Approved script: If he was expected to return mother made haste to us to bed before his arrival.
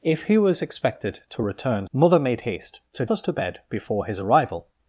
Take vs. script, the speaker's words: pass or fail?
pass